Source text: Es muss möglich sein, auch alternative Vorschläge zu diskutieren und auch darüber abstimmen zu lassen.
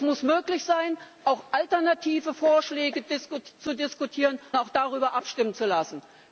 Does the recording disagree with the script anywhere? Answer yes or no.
yes